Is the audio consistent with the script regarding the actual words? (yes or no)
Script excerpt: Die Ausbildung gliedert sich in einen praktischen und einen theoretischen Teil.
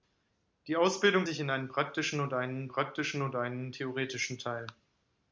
no